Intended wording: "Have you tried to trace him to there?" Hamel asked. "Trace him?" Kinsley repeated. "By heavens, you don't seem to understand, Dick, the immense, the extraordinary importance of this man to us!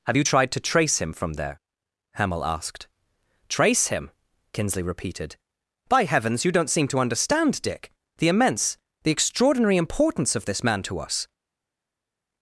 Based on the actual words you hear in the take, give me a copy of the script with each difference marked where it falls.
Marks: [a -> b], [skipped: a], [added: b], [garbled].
"Have you tried to trace him [to -> from] there?" Hamel asked. "Trace him?" Kinsley repeated. "By heavens, you don't seem to understand, Dick, the immense, the extraordinary importance of this man to us!